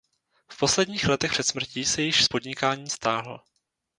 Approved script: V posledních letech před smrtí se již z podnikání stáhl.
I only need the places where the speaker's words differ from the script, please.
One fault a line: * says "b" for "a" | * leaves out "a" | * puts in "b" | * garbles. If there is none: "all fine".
all fine